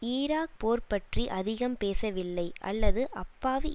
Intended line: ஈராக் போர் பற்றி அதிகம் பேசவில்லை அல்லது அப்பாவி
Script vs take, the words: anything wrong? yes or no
no